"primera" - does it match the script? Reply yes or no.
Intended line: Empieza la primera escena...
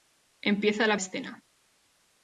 no